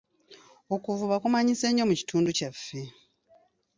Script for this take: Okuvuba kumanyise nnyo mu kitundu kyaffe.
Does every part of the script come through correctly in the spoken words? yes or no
yes